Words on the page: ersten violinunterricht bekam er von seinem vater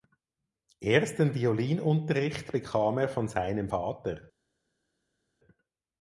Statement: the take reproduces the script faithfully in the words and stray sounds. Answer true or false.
true